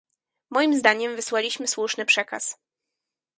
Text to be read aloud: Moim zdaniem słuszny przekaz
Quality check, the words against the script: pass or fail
fail